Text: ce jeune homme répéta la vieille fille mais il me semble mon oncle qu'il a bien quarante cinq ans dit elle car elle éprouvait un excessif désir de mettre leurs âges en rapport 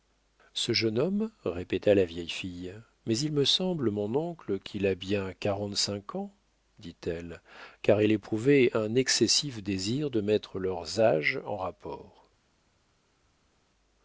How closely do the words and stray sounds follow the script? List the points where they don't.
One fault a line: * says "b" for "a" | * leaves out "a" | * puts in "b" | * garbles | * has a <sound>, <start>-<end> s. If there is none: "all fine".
all fine